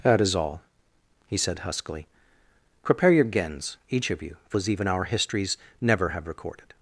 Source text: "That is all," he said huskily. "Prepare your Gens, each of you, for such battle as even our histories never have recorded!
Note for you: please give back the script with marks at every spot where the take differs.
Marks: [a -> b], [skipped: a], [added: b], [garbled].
"That is all," he said huskily. "Prepare your Gens, each of you, for [skipped: such battle] as even our histories never have recorded!